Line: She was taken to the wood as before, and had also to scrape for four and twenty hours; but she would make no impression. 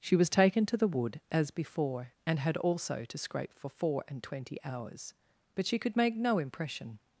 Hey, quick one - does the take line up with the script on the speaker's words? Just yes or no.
no